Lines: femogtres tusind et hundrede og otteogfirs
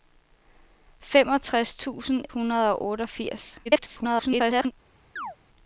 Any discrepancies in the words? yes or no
yes